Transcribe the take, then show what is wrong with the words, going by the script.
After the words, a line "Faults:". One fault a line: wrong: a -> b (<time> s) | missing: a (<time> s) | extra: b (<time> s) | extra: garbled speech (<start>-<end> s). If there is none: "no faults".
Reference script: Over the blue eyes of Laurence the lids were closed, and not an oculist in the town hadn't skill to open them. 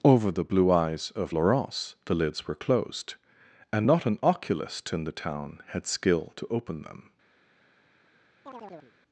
Over the blue eyes of Laurence the lids were closed, and not an oculist in the town had skill to open them.
Faults:
wrong: hadn't -> had (5.7 s)